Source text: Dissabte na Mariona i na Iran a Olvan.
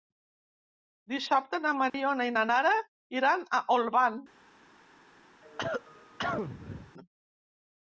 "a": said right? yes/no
yes